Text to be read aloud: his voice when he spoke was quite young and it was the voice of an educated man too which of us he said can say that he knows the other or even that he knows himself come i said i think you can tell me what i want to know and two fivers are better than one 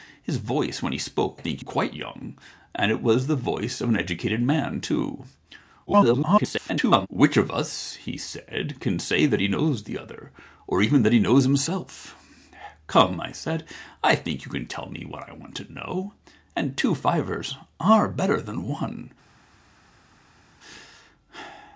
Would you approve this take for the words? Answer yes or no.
no